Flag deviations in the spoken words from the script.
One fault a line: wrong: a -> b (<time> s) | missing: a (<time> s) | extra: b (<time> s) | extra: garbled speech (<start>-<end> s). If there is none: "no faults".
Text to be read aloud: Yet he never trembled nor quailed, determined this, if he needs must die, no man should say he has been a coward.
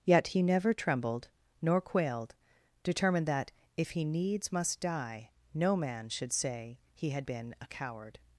wrong: this -> that (3.3 s)
wrong: has -> had (7.1 s)